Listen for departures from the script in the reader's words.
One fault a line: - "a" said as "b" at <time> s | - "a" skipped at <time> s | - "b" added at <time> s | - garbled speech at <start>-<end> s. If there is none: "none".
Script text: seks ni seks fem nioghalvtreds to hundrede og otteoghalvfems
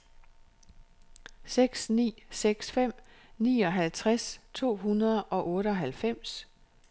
none